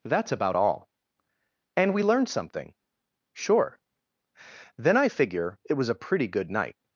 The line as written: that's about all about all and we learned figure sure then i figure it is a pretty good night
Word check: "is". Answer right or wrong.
wrong